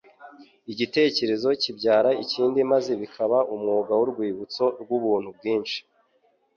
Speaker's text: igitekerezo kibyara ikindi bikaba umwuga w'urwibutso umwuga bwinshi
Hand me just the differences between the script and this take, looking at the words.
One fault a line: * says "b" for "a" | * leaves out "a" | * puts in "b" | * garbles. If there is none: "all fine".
* puts in "maze"
* says "rw'ubuntu" for "umwuga"